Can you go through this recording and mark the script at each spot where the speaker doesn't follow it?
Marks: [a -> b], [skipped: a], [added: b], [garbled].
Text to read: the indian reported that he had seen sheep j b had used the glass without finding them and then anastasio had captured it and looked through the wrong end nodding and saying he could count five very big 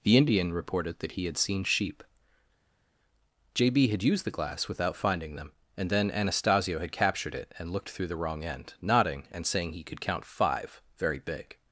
the indian reported that he had seen sheep j b had used the glass without finding them and then anastasio had captured it and looked through the wrong end nodding and saying he could count five very big